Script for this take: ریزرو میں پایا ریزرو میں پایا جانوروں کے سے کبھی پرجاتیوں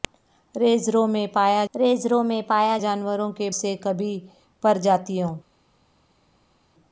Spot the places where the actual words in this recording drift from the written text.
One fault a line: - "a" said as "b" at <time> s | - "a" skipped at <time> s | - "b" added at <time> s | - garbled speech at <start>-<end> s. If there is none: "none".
none